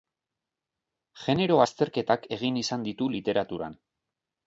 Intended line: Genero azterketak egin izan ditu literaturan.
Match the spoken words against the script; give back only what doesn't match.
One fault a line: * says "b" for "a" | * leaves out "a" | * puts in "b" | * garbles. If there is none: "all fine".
all fine